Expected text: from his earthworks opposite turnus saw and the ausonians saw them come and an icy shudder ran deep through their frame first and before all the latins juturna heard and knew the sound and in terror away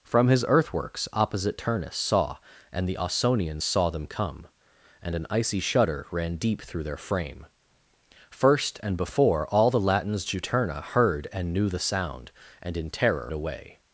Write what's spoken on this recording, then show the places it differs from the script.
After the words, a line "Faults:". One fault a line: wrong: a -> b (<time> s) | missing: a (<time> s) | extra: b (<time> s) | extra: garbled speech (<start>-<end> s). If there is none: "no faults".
from his earthworks opposite turnus saw and the ausonians saw them come and an icy shudder ran deep through their frame first and before all the latins juturna heard and knew the sound and in terror away
Faults:
no faults